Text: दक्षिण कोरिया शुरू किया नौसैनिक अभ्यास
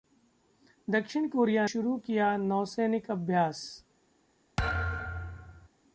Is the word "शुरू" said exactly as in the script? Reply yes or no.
yes